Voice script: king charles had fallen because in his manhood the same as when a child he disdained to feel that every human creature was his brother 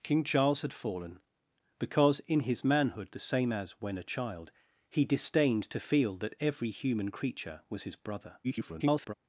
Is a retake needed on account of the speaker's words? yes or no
yes